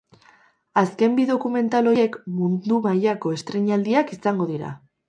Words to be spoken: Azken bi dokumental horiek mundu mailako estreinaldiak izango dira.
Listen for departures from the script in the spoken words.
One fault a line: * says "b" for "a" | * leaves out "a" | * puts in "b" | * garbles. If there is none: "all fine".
all fine